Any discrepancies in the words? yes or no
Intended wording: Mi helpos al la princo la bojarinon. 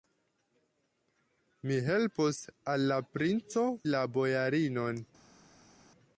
no